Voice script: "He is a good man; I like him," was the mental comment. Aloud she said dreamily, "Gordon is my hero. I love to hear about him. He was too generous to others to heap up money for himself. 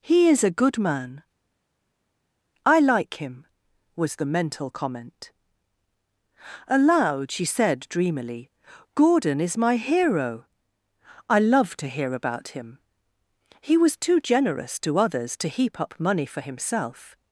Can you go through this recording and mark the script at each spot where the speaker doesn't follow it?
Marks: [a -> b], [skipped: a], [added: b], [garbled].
"He is a good man; I like him," was the mental comment. Aloud she said dreamily, "Gordon is my hero. I love to hear about him. He was too generous to others to heap up money for himself.